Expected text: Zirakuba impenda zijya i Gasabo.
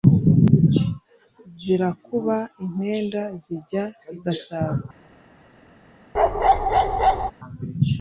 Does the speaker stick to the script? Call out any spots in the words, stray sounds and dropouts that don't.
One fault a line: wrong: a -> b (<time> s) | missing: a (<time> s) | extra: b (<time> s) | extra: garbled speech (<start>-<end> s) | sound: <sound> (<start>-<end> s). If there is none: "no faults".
sound: bark (6.1-7.3 s)